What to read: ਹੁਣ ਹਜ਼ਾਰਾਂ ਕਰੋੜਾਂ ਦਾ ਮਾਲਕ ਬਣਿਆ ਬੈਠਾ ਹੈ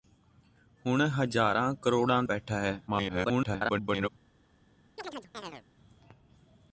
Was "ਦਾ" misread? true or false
true